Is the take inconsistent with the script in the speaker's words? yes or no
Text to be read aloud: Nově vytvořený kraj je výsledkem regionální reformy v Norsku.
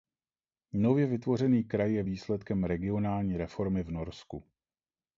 no